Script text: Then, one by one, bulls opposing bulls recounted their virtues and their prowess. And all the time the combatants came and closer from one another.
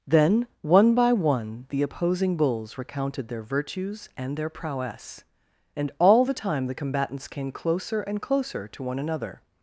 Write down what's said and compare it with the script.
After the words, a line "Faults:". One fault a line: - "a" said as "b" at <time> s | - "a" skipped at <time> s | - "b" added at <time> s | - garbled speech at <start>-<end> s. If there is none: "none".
Then, one by one, the opposing bulls recounted their virtues and their prowess. And all the time the combatants came closer and closer to one another.
Faults:
- "bulls" said as "the" at 1.7 s
- "closer" added at 7.5 s
- "from" said as "to" at 8.7 s